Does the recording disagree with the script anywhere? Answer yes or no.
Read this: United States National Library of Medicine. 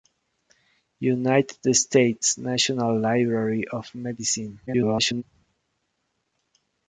yes